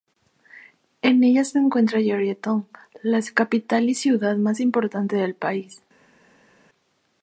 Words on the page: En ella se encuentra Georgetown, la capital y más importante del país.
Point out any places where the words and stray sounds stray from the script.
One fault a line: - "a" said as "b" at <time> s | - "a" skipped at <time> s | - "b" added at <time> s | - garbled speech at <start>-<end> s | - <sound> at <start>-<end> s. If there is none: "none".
- "ciudad" added at 3.9 s